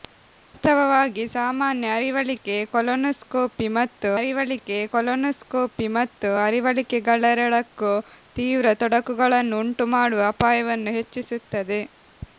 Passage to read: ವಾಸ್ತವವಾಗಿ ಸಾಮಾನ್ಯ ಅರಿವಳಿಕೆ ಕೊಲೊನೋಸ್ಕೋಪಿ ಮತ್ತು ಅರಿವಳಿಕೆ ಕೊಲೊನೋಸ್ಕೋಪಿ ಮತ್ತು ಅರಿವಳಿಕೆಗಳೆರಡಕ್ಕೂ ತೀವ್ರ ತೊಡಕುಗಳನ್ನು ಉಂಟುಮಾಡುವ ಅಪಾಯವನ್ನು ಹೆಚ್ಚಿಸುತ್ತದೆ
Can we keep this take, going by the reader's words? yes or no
yes